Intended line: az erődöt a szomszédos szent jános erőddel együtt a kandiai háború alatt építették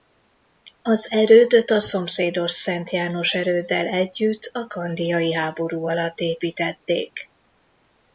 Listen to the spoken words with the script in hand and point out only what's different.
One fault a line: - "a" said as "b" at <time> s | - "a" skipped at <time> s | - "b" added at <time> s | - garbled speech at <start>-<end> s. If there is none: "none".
none